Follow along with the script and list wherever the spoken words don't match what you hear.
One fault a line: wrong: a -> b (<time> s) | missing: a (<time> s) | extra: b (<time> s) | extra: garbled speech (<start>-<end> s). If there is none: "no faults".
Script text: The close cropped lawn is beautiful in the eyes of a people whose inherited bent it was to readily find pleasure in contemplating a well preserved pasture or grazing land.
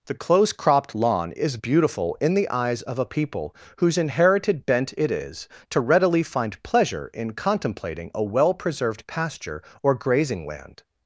wrong: was -> is (5.1 s)